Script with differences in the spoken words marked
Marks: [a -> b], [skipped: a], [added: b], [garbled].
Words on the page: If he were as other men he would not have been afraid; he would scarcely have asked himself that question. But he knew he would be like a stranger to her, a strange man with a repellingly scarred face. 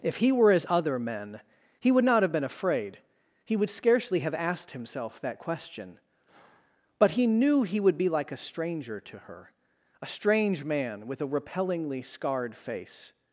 If he were as other men he would not have been afraid; he would scarcely have asked himself that question. But he knew he would be like a stranger to her, a strange man with a repellingly scarred face.